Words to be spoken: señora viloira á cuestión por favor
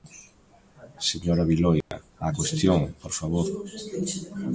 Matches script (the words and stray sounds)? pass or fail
fail